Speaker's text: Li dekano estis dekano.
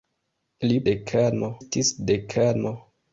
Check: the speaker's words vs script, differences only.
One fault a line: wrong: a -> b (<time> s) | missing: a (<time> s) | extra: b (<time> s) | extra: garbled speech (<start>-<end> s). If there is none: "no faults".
no faults